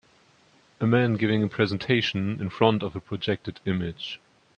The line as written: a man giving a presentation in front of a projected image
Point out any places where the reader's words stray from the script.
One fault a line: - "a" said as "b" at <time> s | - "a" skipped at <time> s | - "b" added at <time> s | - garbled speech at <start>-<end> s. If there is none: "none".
none